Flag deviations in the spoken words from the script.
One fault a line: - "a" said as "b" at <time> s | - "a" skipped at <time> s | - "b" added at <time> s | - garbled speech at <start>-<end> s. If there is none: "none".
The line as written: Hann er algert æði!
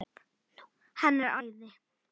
- "algert" skipped at 1.4 s